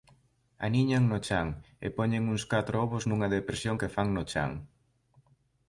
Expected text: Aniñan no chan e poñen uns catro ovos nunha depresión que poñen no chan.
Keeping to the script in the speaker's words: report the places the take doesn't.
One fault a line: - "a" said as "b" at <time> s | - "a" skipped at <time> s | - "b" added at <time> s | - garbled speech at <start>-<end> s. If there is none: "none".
- "poñen" said as "fan" at 4.0 s